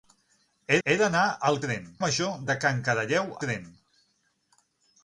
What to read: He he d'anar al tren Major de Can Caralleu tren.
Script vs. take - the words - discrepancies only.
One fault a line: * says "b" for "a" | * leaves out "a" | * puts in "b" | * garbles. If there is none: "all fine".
all fine